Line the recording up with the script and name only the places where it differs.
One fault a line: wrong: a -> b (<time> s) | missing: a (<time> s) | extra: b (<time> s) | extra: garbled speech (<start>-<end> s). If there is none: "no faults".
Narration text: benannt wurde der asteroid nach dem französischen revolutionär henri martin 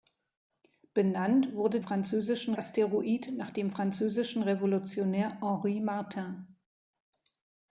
wrong: der -> französischen (1.8 s)